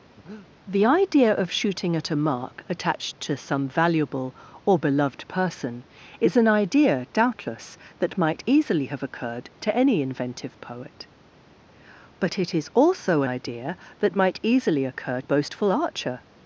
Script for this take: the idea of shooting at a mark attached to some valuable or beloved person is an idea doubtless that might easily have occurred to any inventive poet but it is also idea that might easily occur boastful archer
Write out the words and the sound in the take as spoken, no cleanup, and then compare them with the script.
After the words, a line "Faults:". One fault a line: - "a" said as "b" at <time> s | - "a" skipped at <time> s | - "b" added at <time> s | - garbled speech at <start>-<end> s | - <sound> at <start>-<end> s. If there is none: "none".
the idea of shooting at a mark attached to some valuable or beloved person is an idea doubtless that might easily have occurred to any inventive poet but it is also idea that might easily occur boastful archer
Faults:
- breath at 0.2-0.5 s